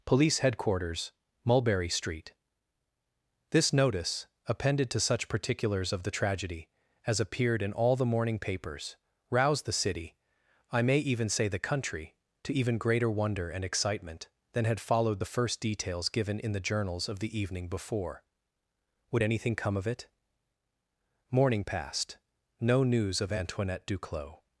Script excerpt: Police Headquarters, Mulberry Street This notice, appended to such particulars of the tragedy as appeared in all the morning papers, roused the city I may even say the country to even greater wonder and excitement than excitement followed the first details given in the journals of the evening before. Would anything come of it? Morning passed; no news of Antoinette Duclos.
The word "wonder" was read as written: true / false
true